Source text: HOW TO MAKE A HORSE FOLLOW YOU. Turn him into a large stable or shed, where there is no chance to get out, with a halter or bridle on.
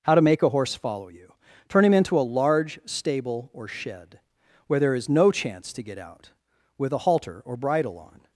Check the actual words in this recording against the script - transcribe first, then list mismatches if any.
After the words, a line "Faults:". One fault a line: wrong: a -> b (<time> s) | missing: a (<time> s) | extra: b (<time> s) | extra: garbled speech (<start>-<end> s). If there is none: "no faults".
HOW TO MAKE A HORSE FOLLOW YOU. Turn him into a large stable or shed, where there is no chance to get out, with a halter or bridle on.
Faults:
no faults